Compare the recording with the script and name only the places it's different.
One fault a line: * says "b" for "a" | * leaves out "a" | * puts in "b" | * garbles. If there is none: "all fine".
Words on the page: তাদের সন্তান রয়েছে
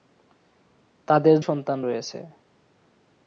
all fine